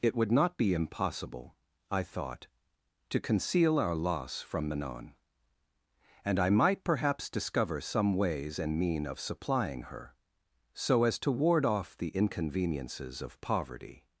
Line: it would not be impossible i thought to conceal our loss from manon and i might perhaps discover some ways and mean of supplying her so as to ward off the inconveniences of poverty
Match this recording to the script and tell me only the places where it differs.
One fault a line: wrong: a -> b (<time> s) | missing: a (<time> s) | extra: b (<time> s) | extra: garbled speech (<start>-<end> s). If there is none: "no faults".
no faults